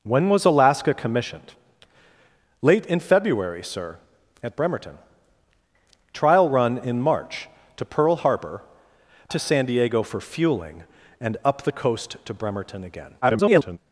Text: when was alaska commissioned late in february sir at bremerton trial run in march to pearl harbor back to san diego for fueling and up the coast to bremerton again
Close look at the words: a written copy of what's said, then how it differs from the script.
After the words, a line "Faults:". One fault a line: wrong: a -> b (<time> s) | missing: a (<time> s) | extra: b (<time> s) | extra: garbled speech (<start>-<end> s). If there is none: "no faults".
when was alaska commissioned late in february sir at bremerton trial run in march to pearl harbor to san diego for fueling and up the coast to bremerton again [garbled]
Faults:
missing: back (8.6 s)
extra: garbled speech (13.2-13.8 s)